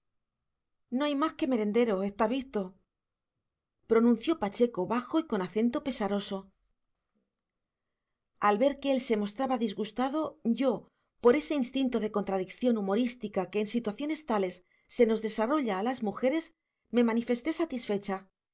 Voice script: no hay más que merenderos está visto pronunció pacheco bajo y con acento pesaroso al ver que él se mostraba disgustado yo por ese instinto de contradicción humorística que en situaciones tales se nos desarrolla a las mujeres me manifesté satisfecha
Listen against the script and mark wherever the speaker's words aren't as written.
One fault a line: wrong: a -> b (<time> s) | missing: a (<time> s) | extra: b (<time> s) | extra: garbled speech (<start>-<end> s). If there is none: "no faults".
no faults